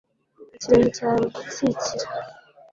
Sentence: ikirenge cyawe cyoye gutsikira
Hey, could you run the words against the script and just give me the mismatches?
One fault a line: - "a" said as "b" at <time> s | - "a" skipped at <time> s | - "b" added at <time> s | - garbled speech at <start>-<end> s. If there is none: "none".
- "cyoye" skipped at 1.2 s